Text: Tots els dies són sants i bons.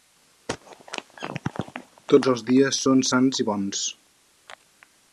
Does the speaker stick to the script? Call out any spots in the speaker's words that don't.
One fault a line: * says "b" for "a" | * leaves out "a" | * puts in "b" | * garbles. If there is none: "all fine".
all fine